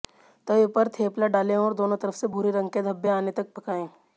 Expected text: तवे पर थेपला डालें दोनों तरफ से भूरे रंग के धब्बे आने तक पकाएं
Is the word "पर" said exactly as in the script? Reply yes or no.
yes